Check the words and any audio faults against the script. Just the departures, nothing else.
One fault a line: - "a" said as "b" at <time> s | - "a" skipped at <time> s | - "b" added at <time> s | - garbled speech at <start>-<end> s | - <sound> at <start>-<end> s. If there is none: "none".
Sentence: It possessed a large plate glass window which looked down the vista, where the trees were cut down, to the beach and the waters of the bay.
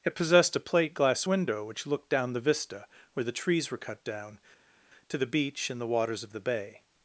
- "large" skipped at 0.6 s